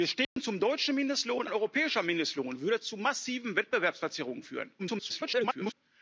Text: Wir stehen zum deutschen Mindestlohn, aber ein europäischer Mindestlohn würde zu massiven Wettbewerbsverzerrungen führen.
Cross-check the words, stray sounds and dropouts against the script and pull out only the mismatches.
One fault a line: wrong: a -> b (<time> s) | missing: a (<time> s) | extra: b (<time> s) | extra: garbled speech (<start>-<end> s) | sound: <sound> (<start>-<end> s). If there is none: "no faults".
sound: dropout (0.2-0.4 s)
missing: aber (1.4 s)
extra: garbled speech (4.8-5.7 s)